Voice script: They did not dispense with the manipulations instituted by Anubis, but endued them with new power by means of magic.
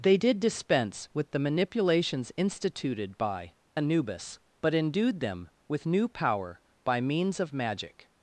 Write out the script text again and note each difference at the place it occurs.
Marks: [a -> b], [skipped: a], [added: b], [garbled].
They did [skipped: not] dispense with the manipulations instituted by Anubis, but endued them with new power by means of magic.